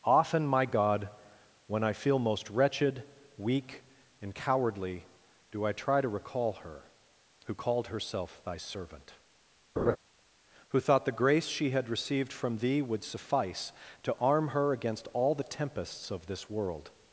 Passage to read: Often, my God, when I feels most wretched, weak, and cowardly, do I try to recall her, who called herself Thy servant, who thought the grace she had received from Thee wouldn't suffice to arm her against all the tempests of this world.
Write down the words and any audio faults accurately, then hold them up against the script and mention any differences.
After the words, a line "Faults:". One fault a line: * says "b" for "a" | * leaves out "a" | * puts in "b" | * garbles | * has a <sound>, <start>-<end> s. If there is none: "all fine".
Often, my God, when I feel most wretched, weak, and cowardly, do I try to recall her, who called herself Thy servant, who thought the grace she had received from Thee would suffice to arm her against all the tempests of this world.
Faults:
* says "feel" for "feels"
* has a laugh, 9.8-10.0 s
* says "would" for "wouldn't"